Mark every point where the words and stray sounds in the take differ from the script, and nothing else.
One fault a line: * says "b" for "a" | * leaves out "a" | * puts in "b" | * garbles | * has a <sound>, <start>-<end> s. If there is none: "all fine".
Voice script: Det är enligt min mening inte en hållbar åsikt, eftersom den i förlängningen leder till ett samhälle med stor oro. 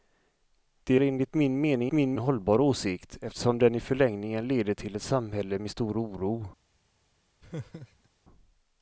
* leaves out "är"
* says "min" for "inte"
* has a laugh, 7.4-8.1 s